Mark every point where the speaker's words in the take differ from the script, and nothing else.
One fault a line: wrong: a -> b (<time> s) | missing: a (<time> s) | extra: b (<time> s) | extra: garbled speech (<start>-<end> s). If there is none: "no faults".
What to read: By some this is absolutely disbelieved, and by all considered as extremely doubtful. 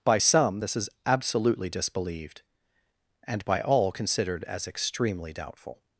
no faults